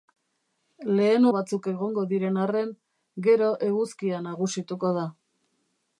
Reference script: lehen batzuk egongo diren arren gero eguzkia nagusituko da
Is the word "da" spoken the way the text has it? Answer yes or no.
yes